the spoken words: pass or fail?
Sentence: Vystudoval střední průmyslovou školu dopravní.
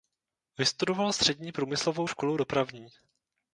pass